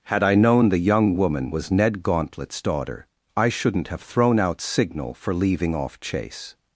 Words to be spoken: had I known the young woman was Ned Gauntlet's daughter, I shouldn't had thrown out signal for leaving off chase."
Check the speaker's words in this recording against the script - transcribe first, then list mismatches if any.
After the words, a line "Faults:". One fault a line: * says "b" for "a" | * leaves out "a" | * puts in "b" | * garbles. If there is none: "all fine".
had I known the young woman was Ned Gauntlet's daughter, I shouldn't have thrown out signal for leaving off chase."
Faults:
* says "have" for "had"